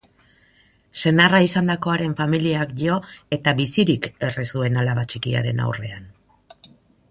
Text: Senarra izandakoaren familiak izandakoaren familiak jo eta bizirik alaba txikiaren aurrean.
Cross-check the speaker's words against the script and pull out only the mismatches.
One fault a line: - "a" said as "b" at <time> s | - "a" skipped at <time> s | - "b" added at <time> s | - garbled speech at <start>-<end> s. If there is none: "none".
- "izandakoaren familiak" skipped at 2.7 s
- "erre zuen" added at 4.3 s